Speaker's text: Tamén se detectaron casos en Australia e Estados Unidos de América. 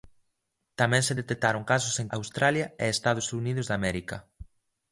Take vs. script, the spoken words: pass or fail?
pass